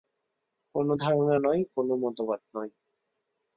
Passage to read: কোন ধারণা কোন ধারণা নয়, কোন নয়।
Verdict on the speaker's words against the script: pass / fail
fail